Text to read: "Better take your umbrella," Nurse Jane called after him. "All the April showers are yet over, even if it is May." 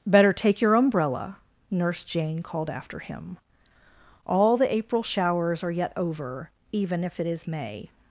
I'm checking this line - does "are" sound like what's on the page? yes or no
yes